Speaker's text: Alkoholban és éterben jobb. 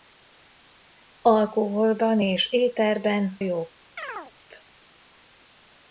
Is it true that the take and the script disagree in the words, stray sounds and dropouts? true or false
true